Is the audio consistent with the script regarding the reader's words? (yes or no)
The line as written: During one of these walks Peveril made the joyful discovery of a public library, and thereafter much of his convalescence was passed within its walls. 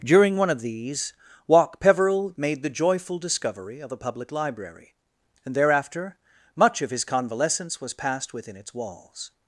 no